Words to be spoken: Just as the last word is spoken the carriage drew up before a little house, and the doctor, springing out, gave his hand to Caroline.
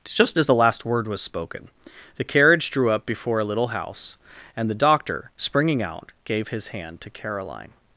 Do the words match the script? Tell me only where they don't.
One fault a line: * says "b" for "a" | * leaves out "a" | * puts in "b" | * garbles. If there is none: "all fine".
* says "was" for "is"